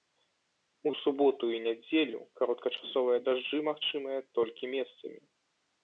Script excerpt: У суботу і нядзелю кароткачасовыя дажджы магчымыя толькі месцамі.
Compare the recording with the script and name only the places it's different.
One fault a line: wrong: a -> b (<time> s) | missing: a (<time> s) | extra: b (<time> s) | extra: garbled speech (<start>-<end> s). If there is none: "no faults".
no faults